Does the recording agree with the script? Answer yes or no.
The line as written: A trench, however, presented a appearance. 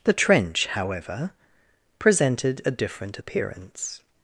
no